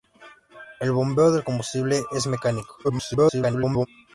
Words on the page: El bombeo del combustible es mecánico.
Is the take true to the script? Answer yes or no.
no